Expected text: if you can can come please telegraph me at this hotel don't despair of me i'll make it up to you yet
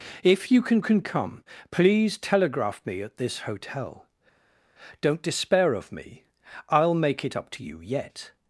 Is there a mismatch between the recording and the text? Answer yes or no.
no